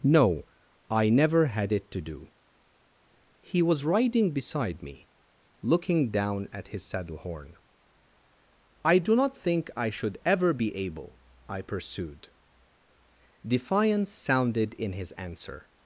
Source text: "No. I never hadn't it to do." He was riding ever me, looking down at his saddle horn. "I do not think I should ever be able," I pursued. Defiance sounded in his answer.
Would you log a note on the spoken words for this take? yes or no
yes